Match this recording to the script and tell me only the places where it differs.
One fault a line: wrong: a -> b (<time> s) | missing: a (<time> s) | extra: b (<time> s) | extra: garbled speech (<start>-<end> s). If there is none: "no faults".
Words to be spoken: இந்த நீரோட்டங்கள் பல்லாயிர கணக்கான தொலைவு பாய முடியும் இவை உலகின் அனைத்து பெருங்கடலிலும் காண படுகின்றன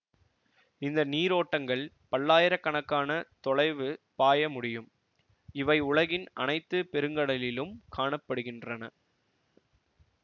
no faults